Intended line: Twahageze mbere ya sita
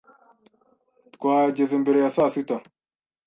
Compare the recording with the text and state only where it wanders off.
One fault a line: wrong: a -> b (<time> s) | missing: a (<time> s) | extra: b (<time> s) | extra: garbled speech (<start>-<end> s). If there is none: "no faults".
extra: saa (2.1 s)